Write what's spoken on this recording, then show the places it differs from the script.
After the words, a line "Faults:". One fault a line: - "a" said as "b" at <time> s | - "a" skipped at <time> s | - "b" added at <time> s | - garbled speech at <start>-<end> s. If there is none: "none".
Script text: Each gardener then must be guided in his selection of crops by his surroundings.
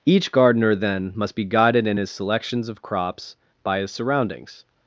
Each gardener then must be guided in his selections of crops by his surroundings.
Faults:
- "selection" said as "selections" at 2.1 s